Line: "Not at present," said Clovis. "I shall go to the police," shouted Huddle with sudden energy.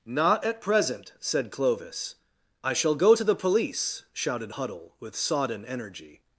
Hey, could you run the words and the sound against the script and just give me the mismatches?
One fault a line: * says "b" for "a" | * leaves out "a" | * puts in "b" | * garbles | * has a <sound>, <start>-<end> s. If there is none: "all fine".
* says "sodden" for "sudden"